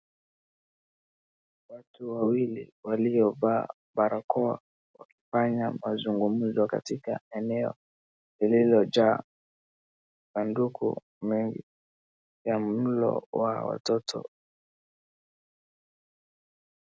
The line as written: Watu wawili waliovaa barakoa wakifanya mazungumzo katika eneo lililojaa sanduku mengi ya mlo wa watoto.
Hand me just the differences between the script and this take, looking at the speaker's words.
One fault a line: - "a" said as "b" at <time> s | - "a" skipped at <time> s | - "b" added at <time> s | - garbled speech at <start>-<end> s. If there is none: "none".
none